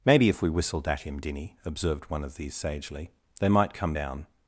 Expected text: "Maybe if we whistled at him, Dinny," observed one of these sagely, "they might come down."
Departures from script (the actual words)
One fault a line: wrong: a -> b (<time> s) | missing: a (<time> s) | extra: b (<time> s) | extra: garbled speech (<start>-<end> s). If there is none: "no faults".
no faults